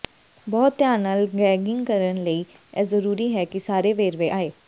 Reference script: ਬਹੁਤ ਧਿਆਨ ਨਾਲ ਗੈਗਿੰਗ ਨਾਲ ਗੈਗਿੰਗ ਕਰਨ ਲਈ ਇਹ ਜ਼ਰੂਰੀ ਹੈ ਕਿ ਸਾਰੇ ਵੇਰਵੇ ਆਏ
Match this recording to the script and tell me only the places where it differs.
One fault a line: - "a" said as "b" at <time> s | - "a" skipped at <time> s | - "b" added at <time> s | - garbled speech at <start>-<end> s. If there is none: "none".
- "ਨਾਲ ਗੈਗਿੰਗ" skipped at 1.9 s